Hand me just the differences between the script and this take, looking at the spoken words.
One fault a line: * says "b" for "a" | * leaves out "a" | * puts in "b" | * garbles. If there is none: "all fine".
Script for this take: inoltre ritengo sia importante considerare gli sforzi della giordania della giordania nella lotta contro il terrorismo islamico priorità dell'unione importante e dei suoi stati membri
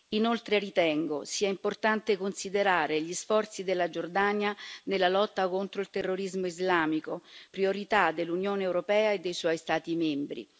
* leaves out "della giordania"
* says "europea" for "importante"